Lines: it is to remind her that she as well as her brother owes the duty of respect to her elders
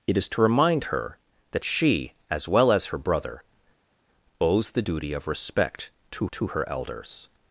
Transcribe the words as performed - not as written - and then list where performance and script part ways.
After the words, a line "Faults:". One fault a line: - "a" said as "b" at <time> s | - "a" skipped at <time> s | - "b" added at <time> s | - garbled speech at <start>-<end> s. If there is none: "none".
it is to remind her that she as well as her brother owes the duty of respect to to her elders
Faults:
- "to" added at 6.3 s